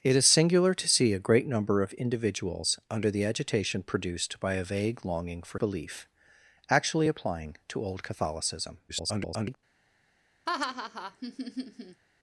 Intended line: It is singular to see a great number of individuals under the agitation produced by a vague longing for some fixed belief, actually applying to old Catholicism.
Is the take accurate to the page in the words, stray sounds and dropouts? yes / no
no